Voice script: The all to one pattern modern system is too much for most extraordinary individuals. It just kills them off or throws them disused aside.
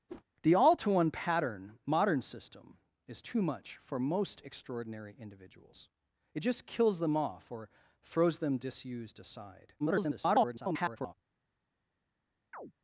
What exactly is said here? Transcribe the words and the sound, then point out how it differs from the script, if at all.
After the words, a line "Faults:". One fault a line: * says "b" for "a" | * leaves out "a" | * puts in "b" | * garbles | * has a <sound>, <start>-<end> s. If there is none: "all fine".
The all to one pattern modern system is too much for most extraordinary individuals. It just kills them off or throws them disused aside. [garbled]
Faults:
* has a whoosh, 0.1-0.2 s
* garbles
* has a chirp, 12.5-12.7 s